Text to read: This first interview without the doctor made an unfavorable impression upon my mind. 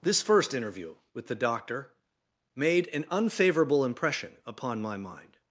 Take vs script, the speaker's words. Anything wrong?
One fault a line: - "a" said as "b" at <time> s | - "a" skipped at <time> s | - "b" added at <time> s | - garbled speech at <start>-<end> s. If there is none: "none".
- "without" said as "with" at 1.1 s